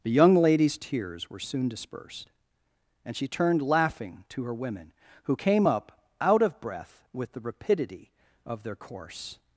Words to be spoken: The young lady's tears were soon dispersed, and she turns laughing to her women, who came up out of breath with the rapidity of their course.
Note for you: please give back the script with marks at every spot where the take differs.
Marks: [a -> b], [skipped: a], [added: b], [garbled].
The young lady's tears were soon dispersed, and she [turns -> turned] laughing to her women, who came up out of breath with the rapidity of their course.